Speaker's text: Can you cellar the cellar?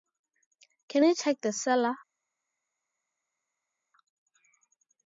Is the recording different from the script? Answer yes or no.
yes